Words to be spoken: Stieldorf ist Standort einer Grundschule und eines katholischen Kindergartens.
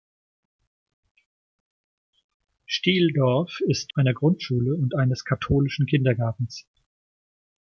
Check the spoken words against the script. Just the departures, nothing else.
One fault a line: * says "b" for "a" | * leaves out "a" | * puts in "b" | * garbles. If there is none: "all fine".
* leaves out "Standort"